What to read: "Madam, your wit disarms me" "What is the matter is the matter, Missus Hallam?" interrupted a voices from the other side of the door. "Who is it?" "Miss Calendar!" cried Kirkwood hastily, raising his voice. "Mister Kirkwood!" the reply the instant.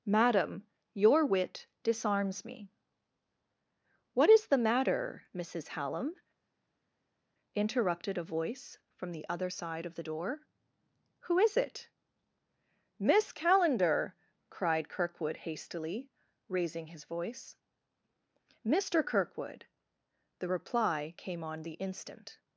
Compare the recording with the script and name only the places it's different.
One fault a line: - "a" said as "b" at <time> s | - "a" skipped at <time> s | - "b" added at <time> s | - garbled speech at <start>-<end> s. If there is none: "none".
- "is the matter" skipped at 5.2 s
- "voices" said as "voice" at 8.2 s
- "came on" added at 21.2 s